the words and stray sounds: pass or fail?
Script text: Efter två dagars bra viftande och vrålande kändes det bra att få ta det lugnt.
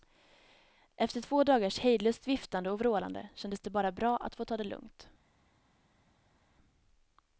fail